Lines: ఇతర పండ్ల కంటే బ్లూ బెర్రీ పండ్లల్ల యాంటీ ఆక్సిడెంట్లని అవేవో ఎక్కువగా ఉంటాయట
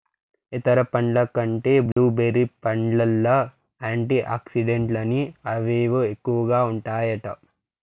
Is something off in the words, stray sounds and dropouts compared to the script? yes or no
yes